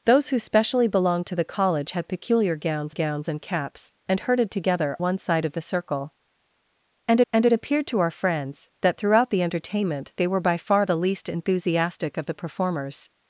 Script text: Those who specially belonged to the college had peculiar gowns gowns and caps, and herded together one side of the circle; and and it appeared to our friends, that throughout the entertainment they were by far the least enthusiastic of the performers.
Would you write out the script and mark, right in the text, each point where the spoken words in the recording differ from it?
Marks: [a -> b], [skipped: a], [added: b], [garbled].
Those who specially belonged to the college had peculiar gowns gowns and caps, and herded together one side of the circle; and and it appeared to our friends, that throughout the entertainment they were by far the least enthusiastic of the performers.